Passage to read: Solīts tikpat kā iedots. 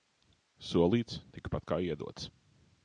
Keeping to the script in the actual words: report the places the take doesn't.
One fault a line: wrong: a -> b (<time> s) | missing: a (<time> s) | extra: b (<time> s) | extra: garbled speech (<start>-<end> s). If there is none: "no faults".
no faults